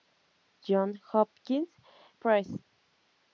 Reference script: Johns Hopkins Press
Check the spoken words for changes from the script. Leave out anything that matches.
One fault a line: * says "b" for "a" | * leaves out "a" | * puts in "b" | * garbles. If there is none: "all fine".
all fine